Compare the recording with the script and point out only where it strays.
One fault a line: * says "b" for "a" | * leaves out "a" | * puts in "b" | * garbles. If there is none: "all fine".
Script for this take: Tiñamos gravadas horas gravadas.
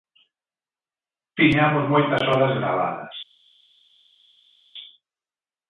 * says "moitas" for "gravadas"